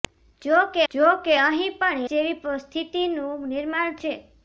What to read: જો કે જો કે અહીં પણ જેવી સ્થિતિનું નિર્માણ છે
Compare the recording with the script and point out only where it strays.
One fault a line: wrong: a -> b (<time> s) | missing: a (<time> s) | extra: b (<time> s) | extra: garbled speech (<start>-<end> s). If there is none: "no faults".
no faults